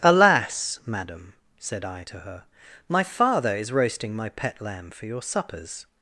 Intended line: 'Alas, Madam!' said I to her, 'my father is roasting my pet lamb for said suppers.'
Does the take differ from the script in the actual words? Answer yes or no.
yes